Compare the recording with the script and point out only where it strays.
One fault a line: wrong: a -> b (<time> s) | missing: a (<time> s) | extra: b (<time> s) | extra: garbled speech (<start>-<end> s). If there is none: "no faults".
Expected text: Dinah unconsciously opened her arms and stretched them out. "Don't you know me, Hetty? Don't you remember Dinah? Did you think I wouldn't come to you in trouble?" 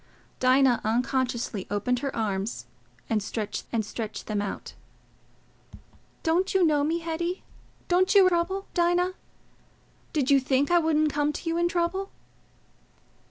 extra: and stretched (3.7 s)
wrong: remember -> trouble (8.2 s)